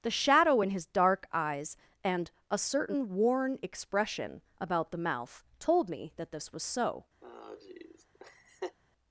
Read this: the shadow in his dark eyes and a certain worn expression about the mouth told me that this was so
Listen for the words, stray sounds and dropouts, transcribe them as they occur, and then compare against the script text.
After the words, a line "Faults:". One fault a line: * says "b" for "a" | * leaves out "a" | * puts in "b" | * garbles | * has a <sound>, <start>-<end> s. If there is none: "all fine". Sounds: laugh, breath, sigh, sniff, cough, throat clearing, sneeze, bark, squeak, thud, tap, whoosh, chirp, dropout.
the shadow in his dark eyes and a certain worn expression about the mouth told me that this was so
Faults:
* has a laugh, 7.2-8.8 s